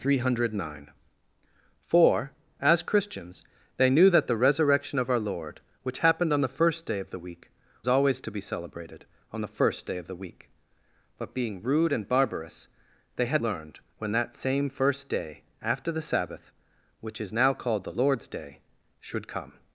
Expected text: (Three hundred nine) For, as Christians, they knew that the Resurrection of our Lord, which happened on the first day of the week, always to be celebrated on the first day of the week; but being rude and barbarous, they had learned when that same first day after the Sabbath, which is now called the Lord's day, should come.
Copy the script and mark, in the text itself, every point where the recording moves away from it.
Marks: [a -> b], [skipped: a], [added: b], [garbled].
(Three hundred nine) For, as Christians, they knew that the Resurrection of our Lord, which happened on the first day of the week, always to be celebrated on the first day of the week; but being rude and barbarous, they had learned when that same first day after the Sabbath, which is now called the Lord's day, should come.